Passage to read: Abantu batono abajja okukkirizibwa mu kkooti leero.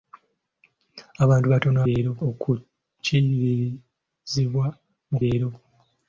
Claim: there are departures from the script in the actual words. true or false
true